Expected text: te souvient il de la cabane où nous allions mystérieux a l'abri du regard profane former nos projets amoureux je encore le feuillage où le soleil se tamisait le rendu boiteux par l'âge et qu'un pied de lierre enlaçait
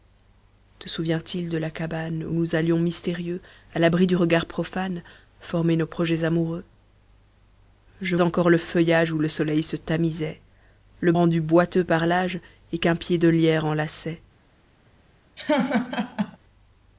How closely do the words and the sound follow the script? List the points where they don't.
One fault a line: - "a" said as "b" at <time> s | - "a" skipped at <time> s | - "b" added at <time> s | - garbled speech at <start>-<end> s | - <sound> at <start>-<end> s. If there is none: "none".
- laugh at 15.4-16.4 s